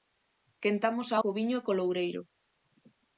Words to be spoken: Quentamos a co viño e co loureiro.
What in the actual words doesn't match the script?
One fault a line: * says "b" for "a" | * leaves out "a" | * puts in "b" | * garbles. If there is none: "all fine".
all fine